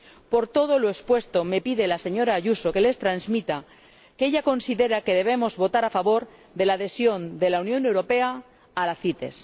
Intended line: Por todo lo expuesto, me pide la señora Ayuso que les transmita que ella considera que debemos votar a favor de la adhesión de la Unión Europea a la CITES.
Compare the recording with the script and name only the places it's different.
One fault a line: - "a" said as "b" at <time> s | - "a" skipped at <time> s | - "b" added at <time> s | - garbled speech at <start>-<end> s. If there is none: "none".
none